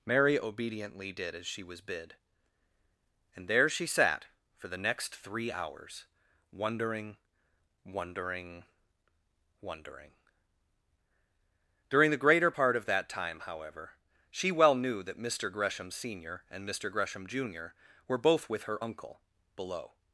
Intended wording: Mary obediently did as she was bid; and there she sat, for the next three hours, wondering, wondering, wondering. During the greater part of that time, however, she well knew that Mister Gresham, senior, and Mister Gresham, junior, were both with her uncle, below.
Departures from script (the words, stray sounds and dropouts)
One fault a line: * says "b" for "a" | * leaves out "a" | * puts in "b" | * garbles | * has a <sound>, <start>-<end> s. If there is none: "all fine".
all fine